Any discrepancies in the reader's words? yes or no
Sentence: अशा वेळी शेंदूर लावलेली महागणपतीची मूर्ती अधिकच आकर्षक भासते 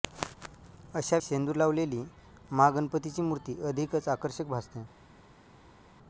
yes